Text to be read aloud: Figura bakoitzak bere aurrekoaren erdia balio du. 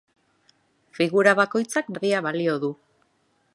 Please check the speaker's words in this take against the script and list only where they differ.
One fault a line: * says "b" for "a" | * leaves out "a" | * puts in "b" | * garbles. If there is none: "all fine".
* leaves out "bere aurrekoaren"